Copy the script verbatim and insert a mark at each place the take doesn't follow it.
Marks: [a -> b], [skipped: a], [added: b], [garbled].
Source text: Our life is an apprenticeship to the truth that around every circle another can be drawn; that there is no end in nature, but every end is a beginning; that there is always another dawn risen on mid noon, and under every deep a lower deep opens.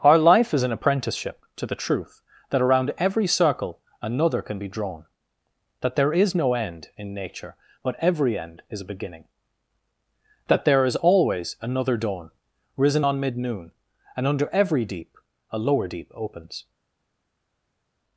Our life is an apprenticeship to the truth that around every circle another can be drawn; that there is no end in nature, but every end is a beginning; that there is always another dawn risen on mid noon, and under every deep a lower deep opens.